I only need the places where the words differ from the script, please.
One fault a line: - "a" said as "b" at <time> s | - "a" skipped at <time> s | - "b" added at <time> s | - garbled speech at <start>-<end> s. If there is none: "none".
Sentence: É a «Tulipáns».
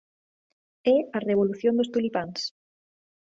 - "Revolución dos" added at 1.3 s